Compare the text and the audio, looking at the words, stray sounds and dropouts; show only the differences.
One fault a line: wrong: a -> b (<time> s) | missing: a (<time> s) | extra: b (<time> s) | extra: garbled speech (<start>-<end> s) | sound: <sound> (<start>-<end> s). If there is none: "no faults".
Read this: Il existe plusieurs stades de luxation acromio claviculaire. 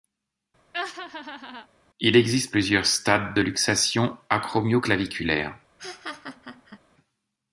sound: laugh (0.7-1.7 s)
sound: laugh (5.8-6.8 s)